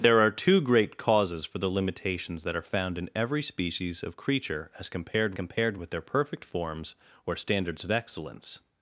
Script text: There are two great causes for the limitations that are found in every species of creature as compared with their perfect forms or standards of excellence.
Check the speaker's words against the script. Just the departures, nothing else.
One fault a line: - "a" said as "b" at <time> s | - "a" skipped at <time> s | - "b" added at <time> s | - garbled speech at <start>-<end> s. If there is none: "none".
- "compared" added at 5.3 s